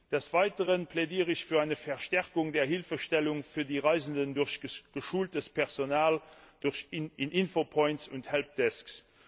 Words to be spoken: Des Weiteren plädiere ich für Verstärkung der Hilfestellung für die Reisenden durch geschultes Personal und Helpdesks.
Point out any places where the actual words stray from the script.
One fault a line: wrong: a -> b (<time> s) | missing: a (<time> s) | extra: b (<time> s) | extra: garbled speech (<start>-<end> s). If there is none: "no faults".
extra: eine (1.6 s)
extra: in Infopoints (6.9 s)